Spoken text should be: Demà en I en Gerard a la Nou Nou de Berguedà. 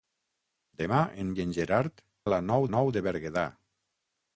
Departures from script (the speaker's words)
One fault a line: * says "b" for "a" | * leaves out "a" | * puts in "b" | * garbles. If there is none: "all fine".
all fine